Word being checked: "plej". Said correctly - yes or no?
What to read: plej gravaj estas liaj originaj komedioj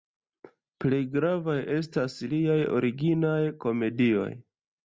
yes